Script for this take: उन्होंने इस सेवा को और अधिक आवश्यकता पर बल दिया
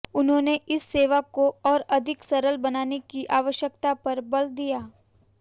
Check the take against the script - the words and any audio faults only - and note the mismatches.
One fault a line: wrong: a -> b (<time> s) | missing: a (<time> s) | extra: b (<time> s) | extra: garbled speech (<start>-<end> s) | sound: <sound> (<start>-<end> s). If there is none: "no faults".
extra: सरल बनाने की (2.2 s)